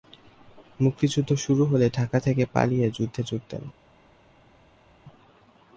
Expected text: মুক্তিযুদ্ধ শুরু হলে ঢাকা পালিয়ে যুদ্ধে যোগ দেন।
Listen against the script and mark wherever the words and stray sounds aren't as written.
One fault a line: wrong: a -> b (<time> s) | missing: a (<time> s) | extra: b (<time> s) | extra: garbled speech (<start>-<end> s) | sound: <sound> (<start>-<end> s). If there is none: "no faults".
extra: থেকে (2.2 s)